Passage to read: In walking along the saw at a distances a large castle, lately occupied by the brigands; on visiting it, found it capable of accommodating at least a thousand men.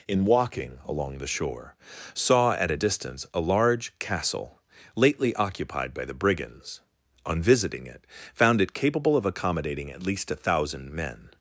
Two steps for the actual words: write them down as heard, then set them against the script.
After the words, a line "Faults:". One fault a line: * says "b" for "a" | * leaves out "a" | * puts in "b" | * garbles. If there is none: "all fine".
In walking along the shore, saw at a distance a large castle, lately occupied by the brigands; on visiting it, found it capable of accommodating at least a thousand men.
Faults:
* puts in "shore"
* says "distance" for "distances"